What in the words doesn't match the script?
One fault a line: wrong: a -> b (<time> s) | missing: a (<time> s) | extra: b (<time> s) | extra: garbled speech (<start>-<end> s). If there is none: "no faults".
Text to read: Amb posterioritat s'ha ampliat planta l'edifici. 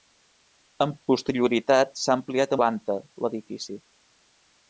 no faults